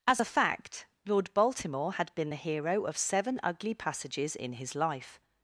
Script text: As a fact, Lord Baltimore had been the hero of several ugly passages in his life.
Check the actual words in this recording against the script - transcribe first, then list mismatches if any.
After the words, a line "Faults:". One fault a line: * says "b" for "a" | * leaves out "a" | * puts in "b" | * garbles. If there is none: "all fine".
As a fact, Lord Baltimore had been the hero of seven ugly passages in his life.
Faults:
* says "seven" for "several"